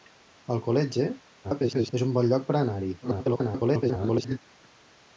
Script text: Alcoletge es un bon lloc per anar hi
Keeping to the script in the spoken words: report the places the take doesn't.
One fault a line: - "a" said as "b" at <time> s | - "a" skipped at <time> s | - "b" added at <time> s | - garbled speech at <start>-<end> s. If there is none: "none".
- garbled speech at 1.4-1.9 s
- garbled speech at 3.0-4.4 s